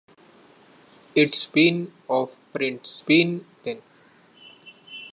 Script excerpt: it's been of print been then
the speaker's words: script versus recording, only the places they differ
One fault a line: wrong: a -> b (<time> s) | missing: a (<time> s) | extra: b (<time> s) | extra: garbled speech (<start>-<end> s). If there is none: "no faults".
no faults